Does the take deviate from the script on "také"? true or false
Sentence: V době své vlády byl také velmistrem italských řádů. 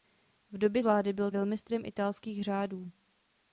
true